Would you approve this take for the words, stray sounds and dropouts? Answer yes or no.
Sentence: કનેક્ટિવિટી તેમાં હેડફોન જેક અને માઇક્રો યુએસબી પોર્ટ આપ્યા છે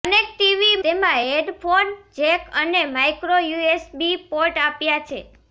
yes